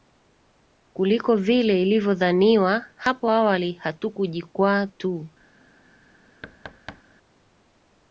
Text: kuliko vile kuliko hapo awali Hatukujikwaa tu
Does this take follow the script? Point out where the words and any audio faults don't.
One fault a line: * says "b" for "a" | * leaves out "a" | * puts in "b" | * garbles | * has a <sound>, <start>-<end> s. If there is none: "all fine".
* says "ilivyodhaniwa" for "kuliko"
* has a thud, 6.4-7.0 s